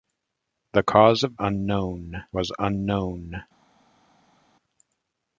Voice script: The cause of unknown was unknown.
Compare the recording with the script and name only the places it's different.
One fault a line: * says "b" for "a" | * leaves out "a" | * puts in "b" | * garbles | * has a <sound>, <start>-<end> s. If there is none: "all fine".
all fine